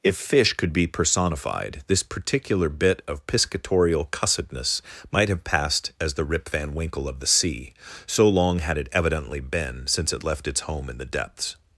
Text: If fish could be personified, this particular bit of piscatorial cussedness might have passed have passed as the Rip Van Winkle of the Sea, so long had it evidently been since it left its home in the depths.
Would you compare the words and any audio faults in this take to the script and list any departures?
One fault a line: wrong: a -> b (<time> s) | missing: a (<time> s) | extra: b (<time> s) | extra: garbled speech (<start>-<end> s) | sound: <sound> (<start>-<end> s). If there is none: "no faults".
missing: have passed (5.9 s)